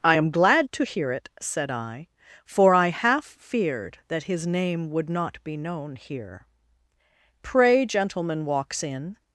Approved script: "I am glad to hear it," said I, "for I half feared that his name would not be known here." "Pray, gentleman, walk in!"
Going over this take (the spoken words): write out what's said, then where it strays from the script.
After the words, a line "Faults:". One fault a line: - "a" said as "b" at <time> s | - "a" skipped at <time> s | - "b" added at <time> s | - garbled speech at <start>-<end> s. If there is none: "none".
"I am glad to hear it," said I, "for I half feared that his name would not be known here." "Pray, gentleman, walks in!"
Faults:
- "walk" said as "walks" at 8.5 s